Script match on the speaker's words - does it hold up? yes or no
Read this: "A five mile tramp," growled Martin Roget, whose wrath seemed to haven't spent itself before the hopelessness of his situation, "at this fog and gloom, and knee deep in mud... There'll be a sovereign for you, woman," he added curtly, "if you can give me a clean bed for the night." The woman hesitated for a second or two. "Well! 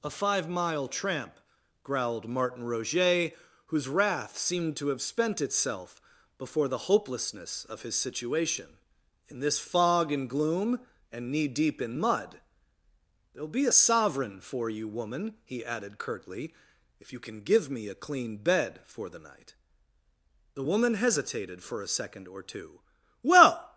no